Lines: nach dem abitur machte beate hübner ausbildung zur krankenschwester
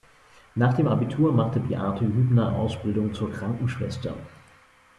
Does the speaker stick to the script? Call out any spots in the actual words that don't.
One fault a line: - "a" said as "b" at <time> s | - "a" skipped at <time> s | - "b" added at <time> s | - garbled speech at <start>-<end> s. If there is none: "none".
none